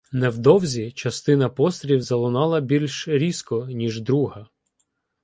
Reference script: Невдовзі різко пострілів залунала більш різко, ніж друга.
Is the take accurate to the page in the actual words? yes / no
no